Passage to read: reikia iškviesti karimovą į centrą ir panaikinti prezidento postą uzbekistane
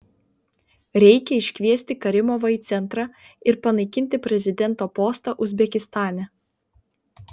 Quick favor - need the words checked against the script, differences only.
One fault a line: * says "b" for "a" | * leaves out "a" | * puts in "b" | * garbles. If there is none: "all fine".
all fine